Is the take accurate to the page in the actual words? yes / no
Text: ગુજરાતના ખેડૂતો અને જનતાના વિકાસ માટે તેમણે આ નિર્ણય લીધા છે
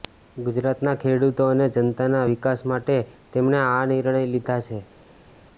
yes